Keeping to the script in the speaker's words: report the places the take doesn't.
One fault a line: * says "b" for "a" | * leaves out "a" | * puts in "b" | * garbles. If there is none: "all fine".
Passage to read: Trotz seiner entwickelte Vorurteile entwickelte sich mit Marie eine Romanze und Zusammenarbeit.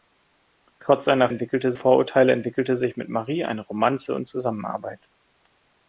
all fine